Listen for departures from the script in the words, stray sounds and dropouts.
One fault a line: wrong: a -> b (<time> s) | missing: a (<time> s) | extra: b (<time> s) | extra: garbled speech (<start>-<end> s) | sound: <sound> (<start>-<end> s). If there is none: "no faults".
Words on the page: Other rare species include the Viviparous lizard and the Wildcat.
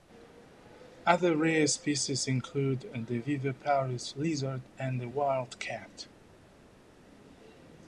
no faults